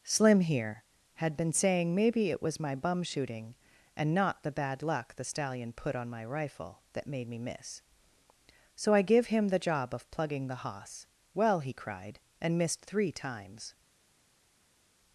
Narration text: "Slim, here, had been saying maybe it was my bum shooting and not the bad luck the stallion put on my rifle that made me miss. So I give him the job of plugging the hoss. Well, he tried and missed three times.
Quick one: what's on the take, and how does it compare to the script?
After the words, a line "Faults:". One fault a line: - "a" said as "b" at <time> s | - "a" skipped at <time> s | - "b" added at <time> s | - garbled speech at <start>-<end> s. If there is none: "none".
"Slim, here, had been saying maybe it was my bum shooting and not the bad luck the stallion put on my rifle that made me miss. So I give him the job of plugging the hoss. Well, he cried and missed three times.
Faults:
- "tried" said as "cried" at 11.7 s